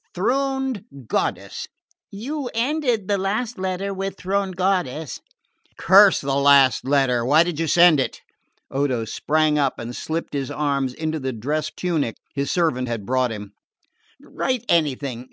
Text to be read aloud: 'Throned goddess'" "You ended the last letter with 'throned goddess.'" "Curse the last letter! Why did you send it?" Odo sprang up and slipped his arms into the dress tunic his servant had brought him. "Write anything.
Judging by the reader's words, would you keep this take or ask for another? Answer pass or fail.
pass